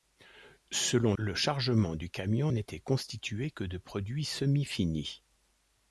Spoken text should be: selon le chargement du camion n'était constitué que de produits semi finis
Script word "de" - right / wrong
right